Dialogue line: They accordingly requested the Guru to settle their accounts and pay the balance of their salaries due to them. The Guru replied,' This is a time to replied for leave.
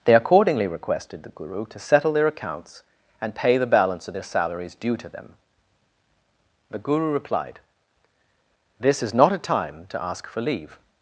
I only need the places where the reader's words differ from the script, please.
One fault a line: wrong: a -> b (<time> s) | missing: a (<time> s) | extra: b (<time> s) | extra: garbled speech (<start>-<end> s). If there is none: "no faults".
extra: not (9.1 s)
wrong: replied -> ask (10.0 s)